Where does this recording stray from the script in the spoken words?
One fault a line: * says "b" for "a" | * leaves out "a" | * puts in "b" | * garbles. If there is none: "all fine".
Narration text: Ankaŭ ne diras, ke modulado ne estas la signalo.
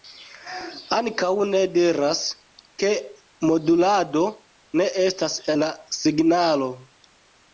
all fine